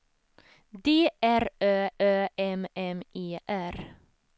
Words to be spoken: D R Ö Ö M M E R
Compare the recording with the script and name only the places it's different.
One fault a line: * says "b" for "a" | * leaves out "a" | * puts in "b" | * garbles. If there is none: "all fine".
all fine